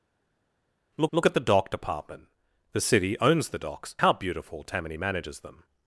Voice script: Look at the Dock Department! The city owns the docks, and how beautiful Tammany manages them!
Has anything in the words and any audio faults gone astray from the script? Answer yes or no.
yes